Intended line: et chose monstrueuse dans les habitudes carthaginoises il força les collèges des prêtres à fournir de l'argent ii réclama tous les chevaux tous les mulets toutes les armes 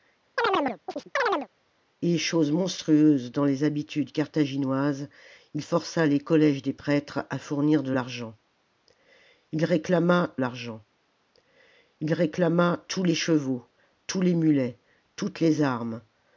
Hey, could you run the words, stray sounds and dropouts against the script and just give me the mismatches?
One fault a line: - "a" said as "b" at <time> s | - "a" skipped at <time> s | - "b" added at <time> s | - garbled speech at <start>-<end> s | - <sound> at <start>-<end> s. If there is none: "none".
- chirp at 0.4-1.5 s
- "l'argent ii réclama" added at 10.4 s